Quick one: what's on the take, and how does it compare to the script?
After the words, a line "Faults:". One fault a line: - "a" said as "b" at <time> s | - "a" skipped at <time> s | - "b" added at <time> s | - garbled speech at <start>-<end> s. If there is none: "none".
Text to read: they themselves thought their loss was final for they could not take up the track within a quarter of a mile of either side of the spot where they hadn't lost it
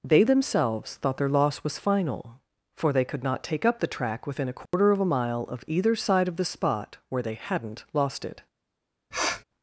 they themselves thought their loss was final for they could not take up the track within a quarter of a mile of either side of the spot where they hadn't lost it
Faults:
none